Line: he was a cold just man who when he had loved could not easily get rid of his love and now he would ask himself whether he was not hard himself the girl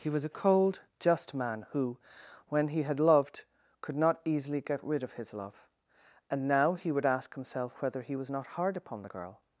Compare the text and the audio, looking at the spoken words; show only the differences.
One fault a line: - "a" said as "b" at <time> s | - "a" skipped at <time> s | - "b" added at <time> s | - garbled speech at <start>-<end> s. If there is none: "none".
- "himself" said as "upon" at 8.8 s